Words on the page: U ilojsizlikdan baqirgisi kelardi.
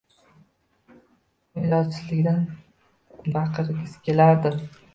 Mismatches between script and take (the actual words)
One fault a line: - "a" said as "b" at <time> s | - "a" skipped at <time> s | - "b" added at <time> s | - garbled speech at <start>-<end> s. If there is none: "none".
none